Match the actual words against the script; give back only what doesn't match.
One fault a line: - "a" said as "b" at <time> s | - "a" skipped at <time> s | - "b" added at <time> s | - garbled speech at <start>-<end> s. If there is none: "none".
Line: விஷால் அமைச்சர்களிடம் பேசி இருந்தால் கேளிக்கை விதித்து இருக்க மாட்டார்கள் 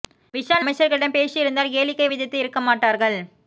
none